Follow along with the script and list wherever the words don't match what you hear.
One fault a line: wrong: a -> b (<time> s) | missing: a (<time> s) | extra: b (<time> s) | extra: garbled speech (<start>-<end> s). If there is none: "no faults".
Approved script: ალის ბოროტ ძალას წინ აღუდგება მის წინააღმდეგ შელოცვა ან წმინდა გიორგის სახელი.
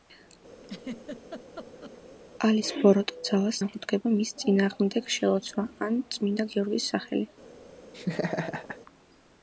missing: წინ (3.6 s)